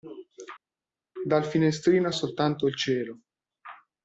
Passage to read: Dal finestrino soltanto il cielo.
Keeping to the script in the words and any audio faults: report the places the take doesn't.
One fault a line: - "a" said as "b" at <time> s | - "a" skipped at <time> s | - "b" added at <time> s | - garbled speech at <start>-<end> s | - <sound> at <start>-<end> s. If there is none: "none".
none